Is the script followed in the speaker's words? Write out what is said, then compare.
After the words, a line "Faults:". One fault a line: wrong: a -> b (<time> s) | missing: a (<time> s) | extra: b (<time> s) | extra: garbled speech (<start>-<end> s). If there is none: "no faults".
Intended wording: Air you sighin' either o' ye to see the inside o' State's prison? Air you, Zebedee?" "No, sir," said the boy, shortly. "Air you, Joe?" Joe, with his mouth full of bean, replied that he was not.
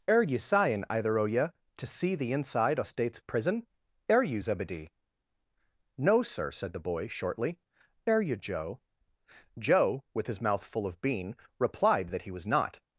Air you sighin' either o' ye to see the inside o' State's prison? Air you, Zebedee?" "No, sir," said the boy, shortly. "Air you, Joe?" Joe, with his mouth full of bean, replied that he was not.
Faults:
no faults